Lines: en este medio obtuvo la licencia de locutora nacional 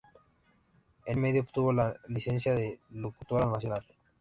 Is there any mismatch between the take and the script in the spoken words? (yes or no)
yes